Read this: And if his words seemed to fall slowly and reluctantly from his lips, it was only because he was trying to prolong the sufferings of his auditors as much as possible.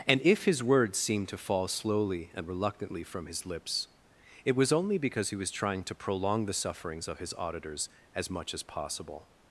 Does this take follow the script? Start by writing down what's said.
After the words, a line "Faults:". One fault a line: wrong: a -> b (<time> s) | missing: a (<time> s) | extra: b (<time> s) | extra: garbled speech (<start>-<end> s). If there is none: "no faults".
And if his words seemed to fall slowly and reluctantly from his lips, it was only because he was trying to prolong the sufferings of his auditors as much as possible.
Faults:
no faults